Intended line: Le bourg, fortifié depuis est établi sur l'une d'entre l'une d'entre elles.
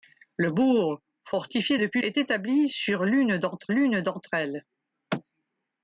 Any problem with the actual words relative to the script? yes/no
no